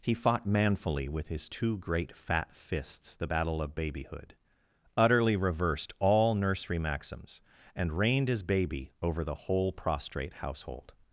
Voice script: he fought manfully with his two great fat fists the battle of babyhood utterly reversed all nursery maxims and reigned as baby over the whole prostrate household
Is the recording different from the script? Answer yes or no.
no